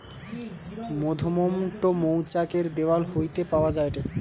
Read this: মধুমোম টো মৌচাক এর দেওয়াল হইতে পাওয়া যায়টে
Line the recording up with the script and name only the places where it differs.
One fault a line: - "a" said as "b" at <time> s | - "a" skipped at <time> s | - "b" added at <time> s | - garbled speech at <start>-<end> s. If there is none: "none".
none